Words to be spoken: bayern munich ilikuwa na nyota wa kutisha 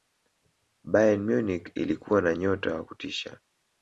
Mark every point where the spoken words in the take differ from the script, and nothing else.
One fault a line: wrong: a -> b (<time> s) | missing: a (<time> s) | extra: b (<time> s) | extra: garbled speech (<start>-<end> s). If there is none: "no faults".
no faults